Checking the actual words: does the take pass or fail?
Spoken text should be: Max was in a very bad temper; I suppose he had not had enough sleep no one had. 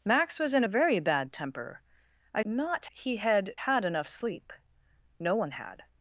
fail